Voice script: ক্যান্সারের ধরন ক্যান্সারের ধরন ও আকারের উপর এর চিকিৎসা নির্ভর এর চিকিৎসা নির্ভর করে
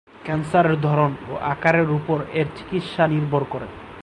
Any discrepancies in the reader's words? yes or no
yes